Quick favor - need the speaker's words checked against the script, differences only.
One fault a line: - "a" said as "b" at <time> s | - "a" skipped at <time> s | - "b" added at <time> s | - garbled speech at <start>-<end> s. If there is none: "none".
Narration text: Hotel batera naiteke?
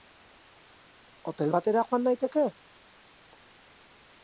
- "joan" added at 1.9 s